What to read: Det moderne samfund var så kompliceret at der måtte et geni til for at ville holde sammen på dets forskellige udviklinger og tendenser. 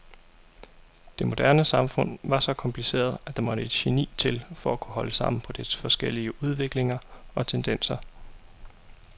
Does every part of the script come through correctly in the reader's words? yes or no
no